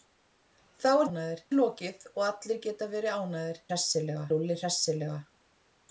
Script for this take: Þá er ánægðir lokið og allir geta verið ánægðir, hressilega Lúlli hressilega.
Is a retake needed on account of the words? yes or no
no